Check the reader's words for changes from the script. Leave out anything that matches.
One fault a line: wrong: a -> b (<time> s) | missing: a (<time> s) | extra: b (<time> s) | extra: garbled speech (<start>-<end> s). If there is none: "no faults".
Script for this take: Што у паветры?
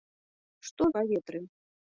no faults